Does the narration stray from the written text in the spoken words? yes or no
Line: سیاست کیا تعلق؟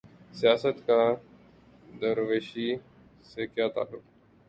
yes